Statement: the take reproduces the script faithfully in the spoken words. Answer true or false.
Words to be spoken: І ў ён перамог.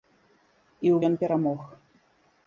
true